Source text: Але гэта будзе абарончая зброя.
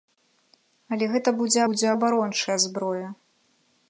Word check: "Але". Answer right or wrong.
right